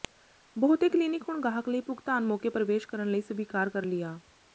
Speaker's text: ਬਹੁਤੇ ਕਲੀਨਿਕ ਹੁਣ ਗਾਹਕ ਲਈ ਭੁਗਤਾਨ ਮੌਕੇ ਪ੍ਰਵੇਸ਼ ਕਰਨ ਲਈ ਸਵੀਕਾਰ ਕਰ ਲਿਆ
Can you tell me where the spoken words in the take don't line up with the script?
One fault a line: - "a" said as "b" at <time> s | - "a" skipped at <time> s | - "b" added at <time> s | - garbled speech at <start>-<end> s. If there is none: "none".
none